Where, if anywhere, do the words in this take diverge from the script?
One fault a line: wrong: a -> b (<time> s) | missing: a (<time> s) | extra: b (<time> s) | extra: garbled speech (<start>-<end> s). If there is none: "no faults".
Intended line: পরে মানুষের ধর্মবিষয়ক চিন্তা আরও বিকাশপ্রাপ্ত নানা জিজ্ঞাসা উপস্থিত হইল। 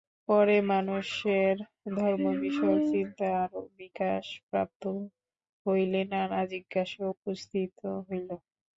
extra: হইলে (5.7 s)